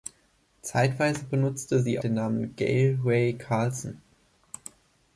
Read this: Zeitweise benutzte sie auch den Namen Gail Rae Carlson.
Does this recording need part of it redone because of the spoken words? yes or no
yes